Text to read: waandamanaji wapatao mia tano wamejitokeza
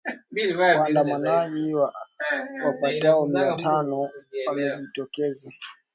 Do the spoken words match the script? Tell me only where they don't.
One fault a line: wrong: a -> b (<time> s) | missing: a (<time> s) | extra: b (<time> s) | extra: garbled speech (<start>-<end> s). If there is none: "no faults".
no faults